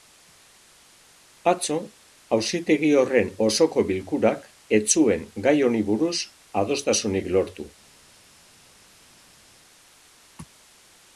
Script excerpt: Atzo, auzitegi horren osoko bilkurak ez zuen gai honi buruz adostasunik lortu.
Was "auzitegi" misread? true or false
false